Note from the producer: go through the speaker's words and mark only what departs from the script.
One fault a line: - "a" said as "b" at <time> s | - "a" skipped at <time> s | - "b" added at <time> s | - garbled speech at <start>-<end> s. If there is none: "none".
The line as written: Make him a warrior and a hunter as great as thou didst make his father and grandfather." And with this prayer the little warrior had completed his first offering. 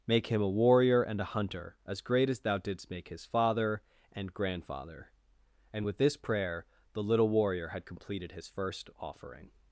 none